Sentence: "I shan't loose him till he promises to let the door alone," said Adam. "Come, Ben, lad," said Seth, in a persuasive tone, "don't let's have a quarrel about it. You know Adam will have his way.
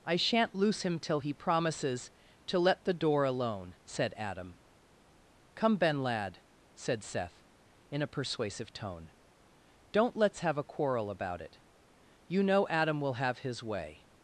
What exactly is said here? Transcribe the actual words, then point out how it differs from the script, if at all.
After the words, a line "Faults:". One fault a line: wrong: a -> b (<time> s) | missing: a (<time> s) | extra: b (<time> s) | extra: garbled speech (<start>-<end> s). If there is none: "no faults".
"I shan't loose him till he promises to let the door alone," said Adam. "Come, Ben, lad," said Seth, in a persuasive tone, "don't let's have a quarrel about it. You know Adam will have his way.
Faults:
no faults